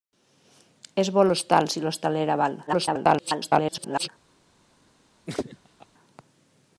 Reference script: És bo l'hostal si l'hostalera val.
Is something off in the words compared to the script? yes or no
yes